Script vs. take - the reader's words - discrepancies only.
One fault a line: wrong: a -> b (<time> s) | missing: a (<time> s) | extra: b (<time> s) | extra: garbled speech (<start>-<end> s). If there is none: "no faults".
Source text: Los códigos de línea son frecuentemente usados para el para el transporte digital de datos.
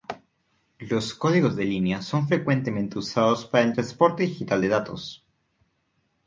missing: para el (3.8 s)